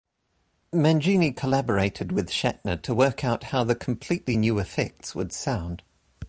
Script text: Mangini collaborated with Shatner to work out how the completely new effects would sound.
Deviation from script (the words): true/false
false